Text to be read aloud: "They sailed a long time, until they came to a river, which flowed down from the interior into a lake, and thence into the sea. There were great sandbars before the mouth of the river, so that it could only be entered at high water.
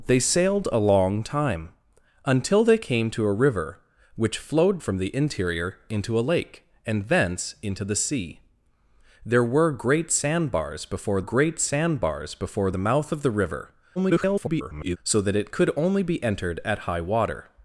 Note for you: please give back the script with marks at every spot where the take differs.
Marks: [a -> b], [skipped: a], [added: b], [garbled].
"They sailed a long time, until they came to a river, which flowed [skipped: down] from the interior into a lake, and thence into the sea. There were great sandbars before [added: great sandbars before] the mouth of the river, [garbled] so that it could only be entered at high water.